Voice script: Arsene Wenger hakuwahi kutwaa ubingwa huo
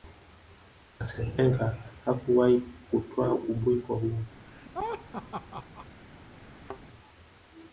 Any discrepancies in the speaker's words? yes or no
no